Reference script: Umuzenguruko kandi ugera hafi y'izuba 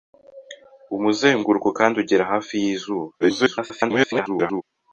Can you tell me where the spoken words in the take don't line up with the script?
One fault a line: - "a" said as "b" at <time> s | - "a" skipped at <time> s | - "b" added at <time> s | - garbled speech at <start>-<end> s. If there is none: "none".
- garbled speech at 3.2-4.6 s